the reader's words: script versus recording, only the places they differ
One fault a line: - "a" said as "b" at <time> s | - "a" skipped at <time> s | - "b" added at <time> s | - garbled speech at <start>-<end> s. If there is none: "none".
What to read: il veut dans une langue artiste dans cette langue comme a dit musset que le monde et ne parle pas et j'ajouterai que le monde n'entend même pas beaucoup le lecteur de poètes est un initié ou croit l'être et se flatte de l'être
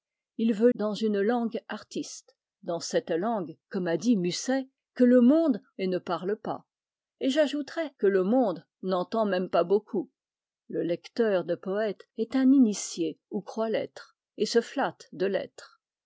none